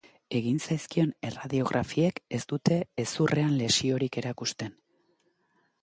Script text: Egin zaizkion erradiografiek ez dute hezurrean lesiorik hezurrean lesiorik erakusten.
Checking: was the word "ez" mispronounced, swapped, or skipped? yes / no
no